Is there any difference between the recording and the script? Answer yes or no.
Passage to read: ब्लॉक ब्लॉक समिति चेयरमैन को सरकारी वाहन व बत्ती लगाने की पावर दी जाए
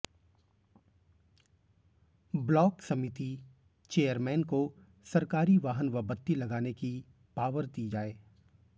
yes